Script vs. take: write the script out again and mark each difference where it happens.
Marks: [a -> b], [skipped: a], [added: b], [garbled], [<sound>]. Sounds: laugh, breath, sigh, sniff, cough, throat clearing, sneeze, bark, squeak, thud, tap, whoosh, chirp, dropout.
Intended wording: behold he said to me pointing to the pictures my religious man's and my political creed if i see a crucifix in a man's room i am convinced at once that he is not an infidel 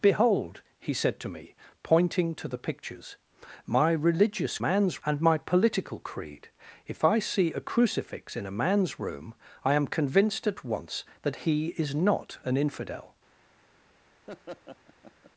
behold he said to me pointing to the pictures my religious man's and my political creed if i see a crucifix in a man's room i am convinced at once that he is not an infidel [laugh]